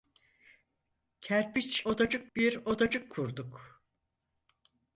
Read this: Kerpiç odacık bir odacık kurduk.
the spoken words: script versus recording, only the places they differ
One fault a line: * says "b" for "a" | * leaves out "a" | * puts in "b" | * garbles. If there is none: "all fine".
all fine